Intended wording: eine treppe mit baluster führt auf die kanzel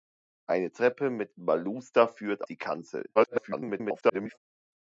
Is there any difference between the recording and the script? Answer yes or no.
yes